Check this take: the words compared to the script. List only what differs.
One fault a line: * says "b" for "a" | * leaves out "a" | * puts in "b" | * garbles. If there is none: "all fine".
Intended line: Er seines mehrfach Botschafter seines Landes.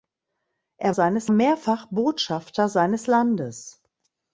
all fine